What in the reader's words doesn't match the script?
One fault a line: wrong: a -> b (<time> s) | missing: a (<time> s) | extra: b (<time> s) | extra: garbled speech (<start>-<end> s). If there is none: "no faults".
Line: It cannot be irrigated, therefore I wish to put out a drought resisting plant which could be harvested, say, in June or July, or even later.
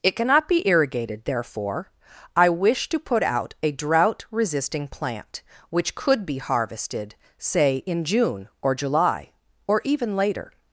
no faults